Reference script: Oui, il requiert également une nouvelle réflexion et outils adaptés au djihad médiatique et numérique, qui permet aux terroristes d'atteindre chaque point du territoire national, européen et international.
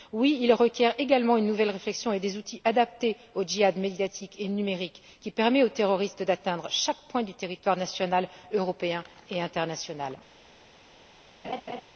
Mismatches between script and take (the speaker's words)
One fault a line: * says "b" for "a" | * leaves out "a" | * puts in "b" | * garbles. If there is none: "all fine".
* puts in "des"